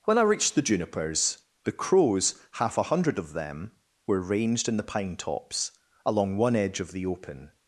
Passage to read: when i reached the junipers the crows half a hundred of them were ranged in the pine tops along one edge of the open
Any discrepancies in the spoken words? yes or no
no